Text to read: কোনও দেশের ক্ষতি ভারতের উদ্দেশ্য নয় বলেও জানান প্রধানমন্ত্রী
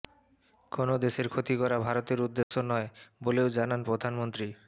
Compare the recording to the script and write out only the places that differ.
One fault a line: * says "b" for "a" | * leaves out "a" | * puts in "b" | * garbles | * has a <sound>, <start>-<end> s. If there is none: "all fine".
* puts in "করা"
* has a dropout, 2.4-2.5 s